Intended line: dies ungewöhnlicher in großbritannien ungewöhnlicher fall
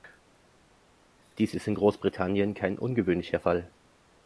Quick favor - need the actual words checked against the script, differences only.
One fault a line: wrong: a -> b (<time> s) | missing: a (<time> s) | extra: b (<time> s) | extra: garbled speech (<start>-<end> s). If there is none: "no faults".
wrong: ungewöhnlicher -> ist (1.5 s)
extra: kein (2.5 s)